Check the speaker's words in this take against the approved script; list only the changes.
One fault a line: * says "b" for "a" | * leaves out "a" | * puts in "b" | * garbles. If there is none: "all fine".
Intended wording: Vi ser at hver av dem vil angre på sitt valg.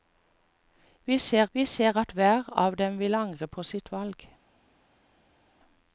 * puts in "vi ser"